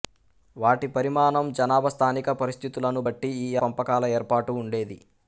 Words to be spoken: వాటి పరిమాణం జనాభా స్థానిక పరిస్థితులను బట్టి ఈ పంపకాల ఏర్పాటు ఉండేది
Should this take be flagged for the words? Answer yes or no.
no